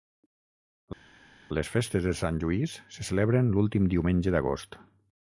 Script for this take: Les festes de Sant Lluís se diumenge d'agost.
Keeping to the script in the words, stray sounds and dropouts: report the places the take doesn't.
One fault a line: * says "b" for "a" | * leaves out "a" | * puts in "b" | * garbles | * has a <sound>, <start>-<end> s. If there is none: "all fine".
* puts in "celebren l'últim"